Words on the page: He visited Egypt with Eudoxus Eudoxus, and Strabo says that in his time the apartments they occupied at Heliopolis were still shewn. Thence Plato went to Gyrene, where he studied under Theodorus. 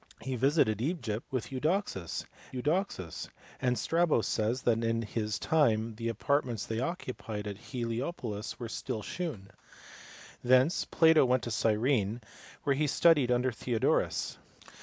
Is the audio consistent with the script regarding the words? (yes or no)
yes